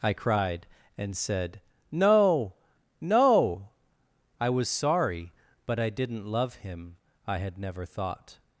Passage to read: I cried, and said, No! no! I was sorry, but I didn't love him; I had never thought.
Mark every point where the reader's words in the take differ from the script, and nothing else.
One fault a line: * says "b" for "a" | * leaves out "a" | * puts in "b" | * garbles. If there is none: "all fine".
all fine